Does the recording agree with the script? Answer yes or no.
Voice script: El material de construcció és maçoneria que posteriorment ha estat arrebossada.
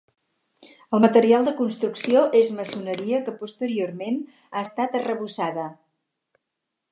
yes